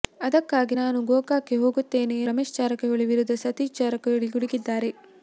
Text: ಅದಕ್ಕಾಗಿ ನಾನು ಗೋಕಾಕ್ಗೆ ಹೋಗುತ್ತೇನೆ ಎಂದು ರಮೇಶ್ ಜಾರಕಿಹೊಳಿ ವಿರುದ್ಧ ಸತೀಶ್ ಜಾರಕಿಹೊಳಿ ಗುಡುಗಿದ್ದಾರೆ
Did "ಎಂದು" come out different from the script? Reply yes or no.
yes